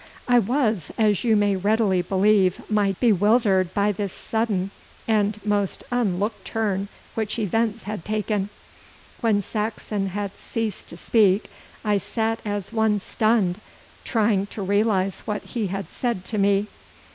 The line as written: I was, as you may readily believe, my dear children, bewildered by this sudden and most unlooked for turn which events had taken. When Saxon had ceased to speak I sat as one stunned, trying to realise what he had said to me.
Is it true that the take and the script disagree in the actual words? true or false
true